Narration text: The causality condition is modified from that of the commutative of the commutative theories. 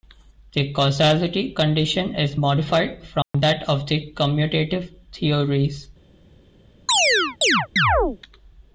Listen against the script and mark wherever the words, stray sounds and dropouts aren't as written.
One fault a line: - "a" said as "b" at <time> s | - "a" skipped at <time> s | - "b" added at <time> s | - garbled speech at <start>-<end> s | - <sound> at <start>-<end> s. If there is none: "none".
- dropout at 3.2-3.3 s
- "of the commutative" skipped at 4.9 s
- chirp at 6.9-8.2 s